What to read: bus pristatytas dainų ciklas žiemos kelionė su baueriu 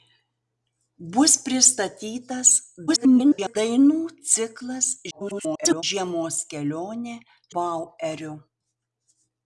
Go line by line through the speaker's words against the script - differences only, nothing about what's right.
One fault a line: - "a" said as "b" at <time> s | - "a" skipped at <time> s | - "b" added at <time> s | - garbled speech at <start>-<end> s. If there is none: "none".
- garbled speech at 2.9-3.6 s
- garbled speech at 5.1-5.8 s
- "su" skipped at 7.2 s